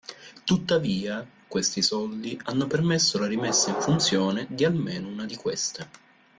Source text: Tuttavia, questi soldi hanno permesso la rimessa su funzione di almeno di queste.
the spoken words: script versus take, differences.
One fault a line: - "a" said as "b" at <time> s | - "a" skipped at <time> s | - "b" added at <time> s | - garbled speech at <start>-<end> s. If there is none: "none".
- "su" said as "in" at 3.7 s
- "una" added at 5.1 s